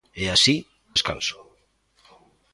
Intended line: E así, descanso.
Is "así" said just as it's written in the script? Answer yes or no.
yes